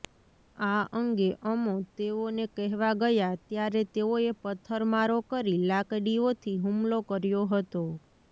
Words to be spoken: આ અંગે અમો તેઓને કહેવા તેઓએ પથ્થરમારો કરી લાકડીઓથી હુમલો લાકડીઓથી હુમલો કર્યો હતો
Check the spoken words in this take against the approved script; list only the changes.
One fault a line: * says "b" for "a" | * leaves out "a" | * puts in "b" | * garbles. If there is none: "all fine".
* puts in "ગયા ત્યારે"
* leaves out "લાકડીઓથી હુમલો"